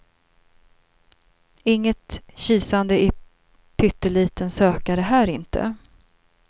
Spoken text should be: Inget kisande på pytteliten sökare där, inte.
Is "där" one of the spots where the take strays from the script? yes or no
yes